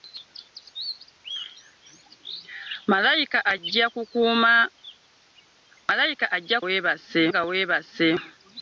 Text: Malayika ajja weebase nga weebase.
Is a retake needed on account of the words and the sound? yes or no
no